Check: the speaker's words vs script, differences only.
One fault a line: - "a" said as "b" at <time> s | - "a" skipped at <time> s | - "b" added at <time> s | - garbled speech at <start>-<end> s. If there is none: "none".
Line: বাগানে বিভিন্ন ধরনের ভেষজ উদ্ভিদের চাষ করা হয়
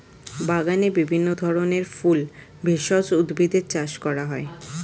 - "ফুল" added at 1.9 s